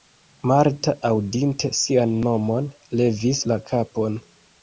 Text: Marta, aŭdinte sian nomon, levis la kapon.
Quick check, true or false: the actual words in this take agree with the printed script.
true